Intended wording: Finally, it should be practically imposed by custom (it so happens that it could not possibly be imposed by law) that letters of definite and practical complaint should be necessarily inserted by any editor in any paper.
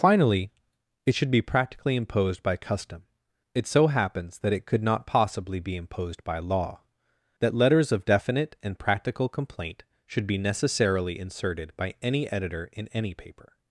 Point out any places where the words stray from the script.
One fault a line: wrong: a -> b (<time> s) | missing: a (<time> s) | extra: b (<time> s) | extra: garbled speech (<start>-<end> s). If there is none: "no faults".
no faults